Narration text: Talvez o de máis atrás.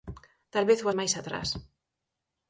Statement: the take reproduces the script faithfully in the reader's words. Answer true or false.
true